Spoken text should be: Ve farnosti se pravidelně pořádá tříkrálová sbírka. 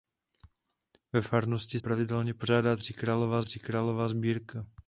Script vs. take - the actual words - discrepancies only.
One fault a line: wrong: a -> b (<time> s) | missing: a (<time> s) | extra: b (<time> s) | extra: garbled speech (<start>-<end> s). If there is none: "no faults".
missing: se (1.8 s)
extra: tříkrálová (3.4 s)